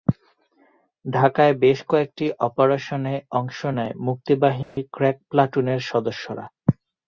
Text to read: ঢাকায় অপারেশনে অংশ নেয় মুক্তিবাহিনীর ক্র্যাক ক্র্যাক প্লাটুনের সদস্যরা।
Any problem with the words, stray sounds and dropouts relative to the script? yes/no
yes